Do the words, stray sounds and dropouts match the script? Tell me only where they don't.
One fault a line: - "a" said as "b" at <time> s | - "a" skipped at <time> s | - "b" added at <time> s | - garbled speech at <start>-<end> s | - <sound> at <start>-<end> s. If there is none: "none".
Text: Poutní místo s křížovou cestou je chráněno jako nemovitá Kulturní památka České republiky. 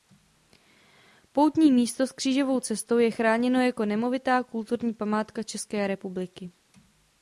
none